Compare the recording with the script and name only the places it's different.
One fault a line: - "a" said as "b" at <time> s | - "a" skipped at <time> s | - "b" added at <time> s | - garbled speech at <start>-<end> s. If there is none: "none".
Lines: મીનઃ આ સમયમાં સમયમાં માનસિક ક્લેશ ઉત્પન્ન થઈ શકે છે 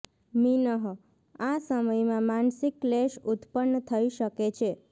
- "સમયમાં" skipped at 2.2 s